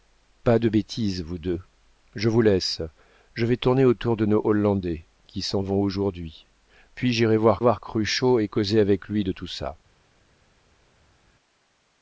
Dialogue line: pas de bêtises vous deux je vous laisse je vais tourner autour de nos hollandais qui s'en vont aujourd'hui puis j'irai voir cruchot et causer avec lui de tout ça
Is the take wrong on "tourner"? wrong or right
right